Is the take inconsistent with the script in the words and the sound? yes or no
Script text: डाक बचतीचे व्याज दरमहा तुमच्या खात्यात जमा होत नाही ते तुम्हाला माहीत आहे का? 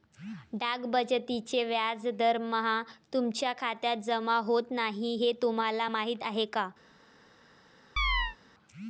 yes